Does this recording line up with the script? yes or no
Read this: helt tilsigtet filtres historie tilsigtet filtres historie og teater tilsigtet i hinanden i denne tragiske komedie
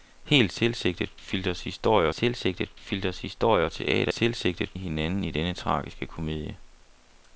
yes